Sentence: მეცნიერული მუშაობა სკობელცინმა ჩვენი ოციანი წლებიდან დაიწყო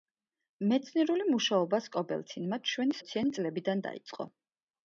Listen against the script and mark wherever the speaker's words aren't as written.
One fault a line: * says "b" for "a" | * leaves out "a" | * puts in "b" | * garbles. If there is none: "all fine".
all fine